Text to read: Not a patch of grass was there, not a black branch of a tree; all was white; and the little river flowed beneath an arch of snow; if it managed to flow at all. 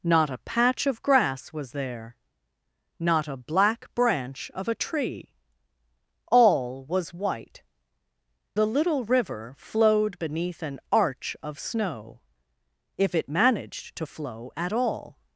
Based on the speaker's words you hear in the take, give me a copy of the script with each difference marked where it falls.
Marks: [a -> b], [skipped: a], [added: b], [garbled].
Not a patch of grass was there, not a black branch of a tree; all was white; [skipped: and] the little river flowed beneath an arch of snow; if it managed to flow at all.